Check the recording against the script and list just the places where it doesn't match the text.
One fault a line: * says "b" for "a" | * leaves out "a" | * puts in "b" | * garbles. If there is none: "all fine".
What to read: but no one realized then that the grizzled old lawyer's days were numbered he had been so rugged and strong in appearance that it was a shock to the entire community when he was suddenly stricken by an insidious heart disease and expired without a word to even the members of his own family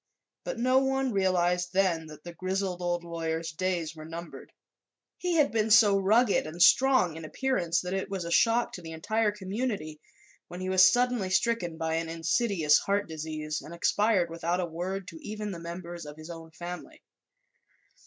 all fine